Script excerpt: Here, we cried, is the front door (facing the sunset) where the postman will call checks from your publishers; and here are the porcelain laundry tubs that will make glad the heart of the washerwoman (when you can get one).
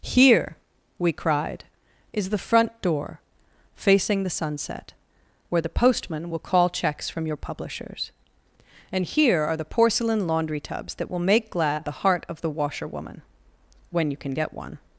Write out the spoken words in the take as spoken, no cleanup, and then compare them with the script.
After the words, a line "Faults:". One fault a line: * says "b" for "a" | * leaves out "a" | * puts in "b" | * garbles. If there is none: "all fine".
Here, we cried, is the front door (facing the sunset) where the postman will call checks from your publishers; and here are the porcelain laundry tubs that will make glad the heart of the washerwoman (when you can get one).
Faults:
all fine